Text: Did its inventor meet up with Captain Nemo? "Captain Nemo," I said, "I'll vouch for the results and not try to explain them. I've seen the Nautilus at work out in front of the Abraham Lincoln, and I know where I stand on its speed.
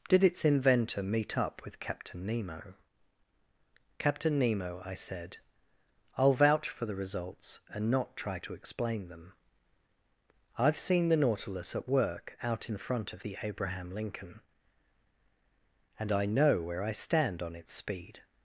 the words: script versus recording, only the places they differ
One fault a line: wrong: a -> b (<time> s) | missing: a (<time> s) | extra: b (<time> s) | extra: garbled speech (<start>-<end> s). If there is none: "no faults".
no faults